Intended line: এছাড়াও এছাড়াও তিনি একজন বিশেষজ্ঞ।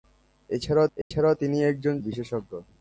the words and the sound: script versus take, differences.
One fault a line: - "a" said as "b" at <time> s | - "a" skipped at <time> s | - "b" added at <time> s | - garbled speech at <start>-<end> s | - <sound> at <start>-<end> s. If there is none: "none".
- dropout at 1.0-1.1 s